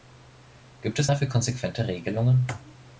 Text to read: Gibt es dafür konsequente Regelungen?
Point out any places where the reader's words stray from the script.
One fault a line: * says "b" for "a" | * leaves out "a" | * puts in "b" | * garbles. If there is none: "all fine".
all fine